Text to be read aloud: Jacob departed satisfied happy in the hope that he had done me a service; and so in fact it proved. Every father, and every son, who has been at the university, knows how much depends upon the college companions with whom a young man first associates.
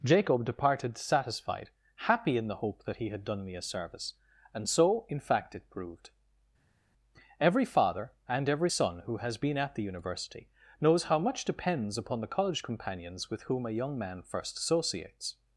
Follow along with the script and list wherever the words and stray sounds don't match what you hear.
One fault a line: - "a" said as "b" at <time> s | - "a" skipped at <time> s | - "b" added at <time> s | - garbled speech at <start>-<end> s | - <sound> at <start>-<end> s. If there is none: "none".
none